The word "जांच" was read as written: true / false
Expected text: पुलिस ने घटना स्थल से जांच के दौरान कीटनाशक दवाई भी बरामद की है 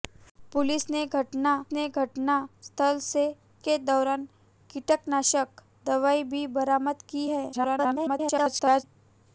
false